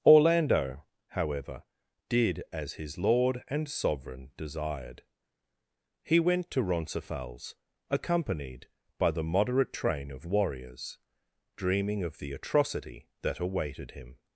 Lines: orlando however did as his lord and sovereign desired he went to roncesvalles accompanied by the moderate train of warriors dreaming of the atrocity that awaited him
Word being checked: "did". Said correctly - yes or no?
yes